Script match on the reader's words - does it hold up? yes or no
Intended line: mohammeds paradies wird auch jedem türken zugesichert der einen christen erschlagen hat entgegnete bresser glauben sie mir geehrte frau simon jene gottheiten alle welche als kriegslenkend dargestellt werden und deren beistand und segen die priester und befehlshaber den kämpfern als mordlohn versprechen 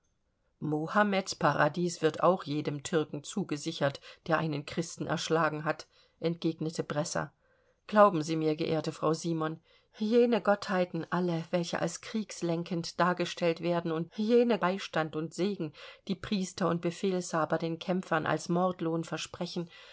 no